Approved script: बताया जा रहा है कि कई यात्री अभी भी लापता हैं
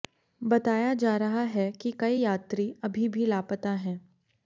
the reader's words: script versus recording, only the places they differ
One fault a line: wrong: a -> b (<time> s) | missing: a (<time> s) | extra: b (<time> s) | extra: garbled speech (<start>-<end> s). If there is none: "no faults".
no faults